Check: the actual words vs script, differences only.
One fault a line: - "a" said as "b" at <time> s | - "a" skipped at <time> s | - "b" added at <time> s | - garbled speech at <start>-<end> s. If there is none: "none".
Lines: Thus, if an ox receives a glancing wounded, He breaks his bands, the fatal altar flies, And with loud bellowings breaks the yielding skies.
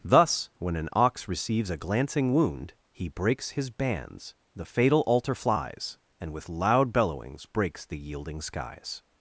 - "if" said as "when" at 0.6 s
- "wounded" said as "wound" at 2.3 s